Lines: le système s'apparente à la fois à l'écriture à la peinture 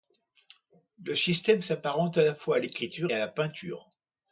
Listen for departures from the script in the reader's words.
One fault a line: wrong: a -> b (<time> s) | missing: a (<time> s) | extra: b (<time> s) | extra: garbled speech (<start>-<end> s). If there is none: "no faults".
no faults